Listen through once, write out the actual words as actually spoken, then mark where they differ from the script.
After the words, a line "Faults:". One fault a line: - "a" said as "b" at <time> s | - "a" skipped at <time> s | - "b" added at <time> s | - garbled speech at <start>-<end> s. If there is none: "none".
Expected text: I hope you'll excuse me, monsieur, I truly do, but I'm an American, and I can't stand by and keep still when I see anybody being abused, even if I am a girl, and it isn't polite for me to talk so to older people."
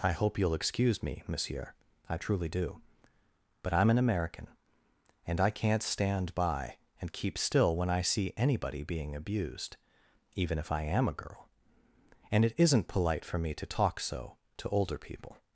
I hope you'll excuse me, monsieur, I truly do, but I'm an American, and I can't stand by and keep still when I see anybody being abused, even if I am a girl, and it isn't polite for me to talk so to older people."
Faults:
none